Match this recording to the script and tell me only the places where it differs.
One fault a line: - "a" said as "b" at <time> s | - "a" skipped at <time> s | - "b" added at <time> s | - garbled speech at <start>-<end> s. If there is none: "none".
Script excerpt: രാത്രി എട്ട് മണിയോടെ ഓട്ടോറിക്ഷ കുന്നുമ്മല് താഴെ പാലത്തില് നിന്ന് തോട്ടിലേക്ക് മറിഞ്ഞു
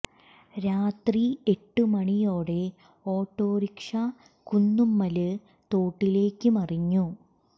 - "താഴെ പാലത്തില് നിന്ന്" skipped at 5.3 s